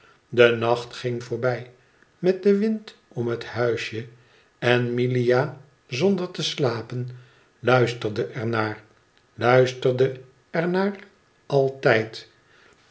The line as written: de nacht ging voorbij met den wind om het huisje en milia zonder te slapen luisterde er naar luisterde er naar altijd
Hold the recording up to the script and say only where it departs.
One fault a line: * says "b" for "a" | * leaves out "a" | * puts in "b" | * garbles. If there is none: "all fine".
all fine